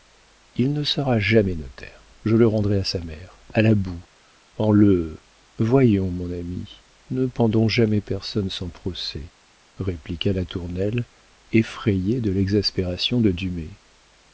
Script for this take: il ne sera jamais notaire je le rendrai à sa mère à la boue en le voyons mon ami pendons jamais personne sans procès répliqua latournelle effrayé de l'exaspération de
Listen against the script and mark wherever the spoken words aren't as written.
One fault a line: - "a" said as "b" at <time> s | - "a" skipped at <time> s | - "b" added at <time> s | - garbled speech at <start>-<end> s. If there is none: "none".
- "ne" added at 7.1 s